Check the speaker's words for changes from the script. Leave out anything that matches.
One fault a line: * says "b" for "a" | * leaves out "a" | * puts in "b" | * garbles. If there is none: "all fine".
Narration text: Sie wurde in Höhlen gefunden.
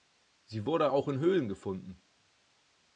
* puts in "auch"